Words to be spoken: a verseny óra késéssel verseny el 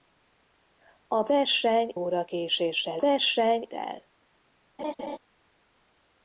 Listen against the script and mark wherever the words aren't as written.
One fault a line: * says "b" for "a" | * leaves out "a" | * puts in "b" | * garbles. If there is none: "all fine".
all fine